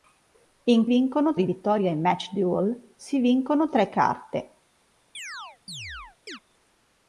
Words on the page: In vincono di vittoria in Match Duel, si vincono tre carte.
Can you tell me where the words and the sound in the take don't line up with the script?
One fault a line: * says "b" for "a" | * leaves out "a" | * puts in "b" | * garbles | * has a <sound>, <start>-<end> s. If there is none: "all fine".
* has a chirp, 5.1-6.4 s